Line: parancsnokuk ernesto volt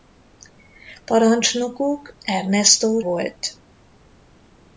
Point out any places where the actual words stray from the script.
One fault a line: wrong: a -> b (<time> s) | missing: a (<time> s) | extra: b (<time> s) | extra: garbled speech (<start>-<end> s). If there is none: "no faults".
no faults